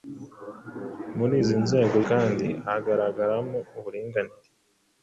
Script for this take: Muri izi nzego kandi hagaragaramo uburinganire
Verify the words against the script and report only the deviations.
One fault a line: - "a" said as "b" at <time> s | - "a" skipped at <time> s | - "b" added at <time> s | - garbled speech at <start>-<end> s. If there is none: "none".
none